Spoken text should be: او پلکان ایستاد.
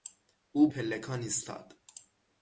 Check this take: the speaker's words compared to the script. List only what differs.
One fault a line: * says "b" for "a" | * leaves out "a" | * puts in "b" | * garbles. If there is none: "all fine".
all fine